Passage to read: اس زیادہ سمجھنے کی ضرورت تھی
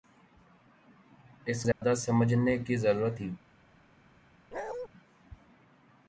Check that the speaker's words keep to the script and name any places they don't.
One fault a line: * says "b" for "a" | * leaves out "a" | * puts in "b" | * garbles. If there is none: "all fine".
all fine